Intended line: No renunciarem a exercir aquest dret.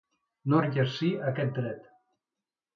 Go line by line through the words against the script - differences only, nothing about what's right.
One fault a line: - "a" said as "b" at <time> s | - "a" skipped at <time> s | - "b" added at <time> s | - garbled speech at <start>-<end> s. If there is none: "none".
- "renunciarem" skipped at 0.6 s